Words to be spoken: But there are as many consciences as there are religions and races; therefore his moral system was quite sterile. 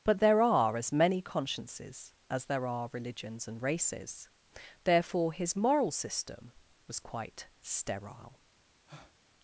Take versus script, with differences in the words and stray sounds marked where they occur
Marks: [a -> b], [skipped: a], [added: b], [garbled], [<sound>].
But there are as many consciences as there are religions and races; therefore his moral system was quite sterile. [breath]